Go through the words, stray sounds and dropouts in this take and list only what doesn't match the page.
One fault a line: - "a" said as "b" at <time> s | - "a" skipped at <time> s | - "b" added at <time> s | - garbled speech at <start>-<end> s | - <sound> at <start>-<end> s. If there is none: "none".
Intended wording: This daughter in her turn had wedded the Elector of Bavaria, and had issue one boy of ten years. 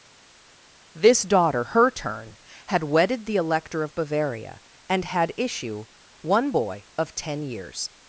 - "in" skipped at 1.7 s